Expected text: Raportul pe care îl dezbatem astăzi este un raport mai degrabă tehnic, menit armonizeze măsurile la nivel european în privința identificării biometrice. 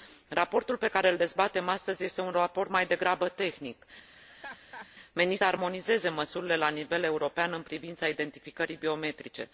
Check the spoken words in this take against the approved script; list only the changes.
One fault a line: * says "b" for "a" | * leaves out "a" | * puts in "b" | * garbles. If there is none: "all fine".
all fine